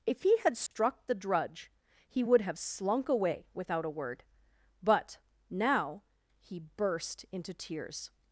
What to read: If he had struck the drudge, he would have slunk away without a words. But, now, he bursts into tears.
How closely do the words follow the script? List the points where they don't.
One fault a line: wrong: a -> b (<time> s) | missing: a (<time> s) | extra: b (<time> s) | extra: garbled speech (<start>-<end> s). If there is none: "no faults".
wrong: words -> word (3.9 s)
wrong: bursts -> burst (6.6 s)